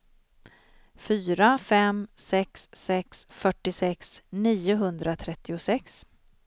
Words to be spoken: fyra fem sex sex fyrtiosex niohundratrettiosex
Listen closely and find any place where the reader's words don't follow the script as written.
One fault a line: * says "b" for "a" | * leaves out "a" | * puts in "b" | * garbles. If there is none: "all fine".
all fine